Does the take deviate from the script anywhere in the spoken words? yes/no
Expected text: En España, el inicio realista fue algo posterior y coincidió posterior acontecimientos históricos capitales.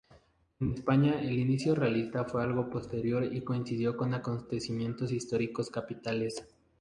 yes